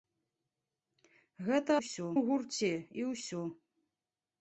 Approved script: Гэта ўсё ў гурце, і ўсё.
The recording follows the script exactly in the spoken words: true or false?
true